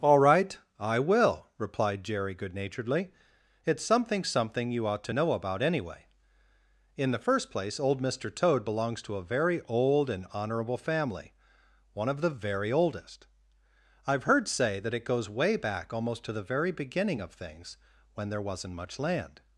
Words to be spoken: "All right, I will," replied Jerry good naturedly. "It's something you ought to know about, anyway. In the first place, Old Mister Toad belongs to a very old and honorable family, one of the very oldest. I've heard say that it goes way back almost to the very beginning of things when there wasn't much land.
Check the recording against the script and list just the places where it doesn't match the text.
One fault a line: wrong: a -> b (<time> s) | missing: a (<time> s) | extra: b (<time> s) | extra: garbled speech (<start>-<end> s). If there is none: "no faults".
extra: something (4.2 s)